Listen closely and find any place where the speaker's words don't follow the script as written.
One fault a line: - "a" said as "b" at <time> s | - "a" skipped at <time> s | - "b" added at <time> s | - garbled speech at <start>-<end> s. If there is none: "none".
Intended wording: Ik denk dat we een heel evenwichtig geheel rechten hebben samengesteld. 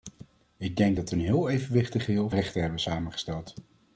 none